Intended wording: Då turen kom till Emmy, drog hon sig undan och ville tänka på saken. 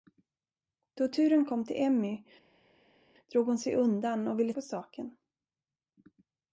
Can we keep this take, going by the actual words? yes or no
no